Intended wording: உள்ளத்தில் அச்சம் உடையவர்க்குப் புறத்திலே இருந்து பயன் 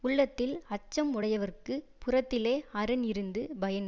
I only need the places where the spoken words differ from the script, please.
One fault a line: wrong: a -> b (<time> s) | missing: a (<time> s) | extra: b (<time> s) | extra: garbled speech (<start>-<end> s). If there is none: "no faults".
extra: அரண் (2.7 s)